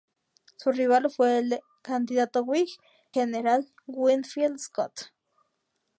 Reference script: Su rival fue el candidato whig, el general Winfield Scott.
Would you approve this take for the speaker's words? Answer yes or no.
no